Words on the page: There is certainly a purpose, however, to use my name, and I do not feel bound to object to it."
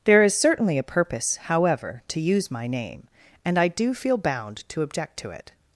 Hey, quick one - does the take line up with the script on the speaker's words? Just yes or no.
no